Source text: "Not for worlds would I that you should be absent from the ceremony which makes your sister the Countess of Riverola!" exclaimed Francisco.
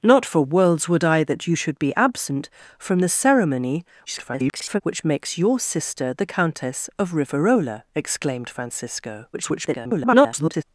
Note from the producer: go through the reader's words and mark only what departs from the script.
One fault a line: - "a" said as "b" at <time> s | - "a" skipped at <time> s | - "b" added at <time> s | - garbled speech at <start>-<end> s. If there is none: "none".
- garbled speech at 4.1-4.8 s
- garbled speech at 9.3-10.6 s